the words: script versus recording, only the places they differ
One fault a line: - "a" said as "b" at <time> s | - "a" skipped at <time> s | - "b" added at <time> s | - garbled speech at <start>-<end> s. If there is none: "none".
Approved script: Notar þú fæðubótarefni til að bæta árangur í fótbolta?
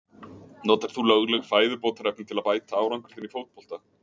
- "lögleg" added at 1.1 s
- "þinn" added at 3.2 s